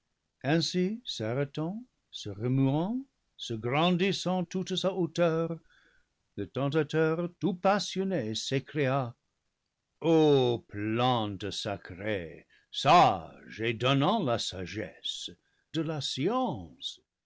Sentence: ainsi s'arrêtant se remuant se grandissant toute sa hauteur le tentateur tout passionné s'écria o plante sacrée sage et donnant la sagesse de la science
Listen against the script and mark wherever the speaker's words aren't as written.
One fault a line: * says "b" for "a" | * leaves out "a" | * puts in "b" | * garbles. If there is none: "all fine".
all fine